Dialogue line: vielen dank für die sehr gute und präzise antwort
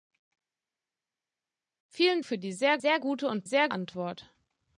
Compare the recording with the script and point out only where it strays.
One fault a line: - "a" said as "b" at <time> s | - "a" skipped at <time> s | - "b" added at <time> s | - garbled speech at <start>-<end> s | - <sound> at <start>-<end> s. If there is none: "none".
- "dank" skipped at 2.2 s
- "sehr" added at 2.7 s
- "präzise" said as "sehr" at 3.4 s